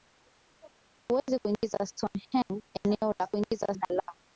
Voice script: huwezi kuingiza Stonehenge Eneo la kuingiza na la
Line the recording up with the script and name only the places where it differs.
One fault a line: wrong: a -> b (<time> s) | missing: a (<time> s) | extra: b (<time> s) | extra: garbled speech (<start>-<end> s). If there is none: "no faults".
no faults